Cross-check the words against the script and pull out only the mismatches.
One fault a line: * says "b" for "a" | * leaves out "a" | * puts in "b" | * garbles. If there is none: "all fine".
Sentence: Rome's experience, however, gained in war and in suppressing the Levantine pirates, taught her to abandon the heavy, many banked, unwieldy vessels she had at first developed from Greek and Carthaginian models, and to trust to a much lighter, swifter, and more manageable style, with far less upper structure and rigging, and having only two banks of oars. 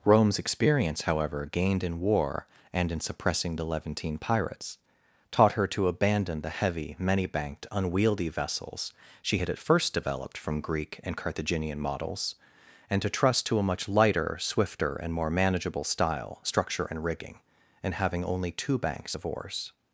* leaves out "with far less upper"